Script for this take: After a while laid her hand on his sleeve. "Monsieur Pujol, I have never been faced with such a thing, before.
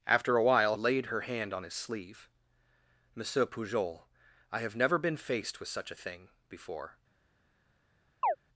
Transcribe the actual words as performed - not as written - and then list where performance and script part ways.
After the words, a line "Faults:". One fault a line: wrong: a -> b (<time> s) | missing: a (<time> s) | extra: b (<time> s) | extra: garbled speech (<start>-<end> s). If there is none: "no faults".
After a while laid her hand on his sleeve. "Monsieur Pujol, I have never been faced with such a thing, before.
Faults:
no faults